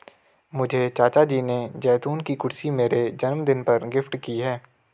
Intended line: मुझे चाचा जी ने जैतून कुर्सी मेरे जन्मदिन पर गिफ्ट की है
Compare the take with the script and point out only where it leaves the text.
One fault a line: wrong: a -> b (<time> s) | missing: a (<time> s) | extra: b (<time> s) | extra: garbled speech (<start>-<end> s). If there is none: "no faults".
extra: की (2.2 s)